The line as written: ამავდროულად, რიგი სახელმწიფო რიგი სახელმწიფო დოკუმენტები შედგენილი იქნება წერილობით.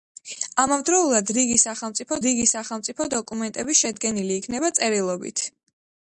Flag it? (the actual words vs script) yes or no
no